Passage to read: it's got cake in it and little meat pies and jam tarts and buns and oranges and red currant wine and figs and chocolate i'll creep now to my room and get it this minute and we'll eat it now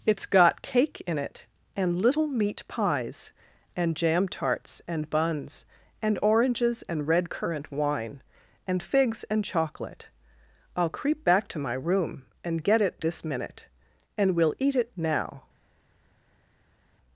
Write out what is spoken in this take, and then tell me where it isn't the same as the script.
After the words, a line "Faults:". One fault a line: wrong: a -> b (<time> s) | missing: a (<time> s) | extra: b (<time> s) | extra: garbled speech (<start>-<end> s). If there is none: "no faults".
it's got cake in it and little meat pies and jam tarts and buns and oranges and red currant wine and figs and chocolate i'll creep back to my room and get it this minute and we'll eat it now
Faults:
wrong: now -> back (11.2 s)